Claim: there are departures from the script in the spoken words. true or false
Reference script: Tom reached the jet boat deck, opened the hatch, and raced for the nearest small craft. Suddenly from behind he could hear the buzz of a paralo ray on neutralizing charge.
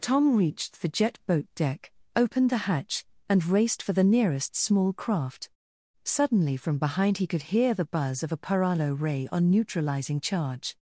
false